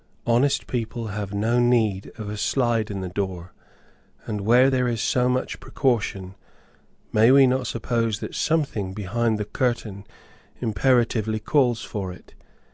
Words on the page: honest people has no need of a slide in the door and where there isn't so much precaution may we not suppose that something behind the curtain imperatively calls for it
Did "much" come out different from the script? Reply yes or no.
no